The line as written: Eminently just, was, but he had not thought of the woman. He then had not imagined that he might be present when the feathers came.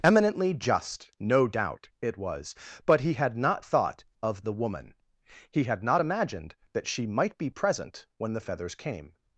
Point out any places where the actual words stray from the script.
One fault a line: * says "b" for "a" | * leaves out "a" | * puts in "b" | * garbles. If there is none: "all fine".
* puts in "no doubt it"
* leaves out "then"
* says "she" for "he"